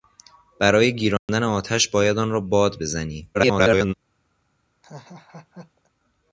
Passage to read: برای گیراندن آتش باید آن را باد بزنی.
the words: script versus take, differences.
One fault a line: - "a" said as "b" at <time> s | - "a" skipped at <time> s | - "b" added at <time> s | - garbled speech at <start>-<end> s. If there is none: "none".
- garbled speech at 3.3-3.9 s